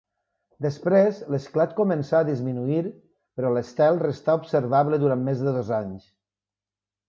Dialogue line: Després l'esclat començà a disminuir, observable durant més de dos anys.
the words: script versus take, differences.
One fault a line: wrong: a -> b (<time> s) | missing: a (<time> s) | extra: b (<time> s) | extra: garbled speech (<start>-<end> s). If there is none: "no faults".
extra: però l'estel restà (3.4 s)